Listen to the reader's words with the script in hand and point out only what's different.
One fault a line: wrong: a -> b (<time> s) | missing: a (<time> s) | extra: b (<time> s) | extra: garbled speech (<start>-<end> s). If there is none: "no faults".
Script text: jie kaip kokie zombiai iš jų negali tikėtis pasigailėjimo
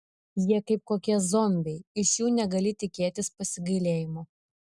no faults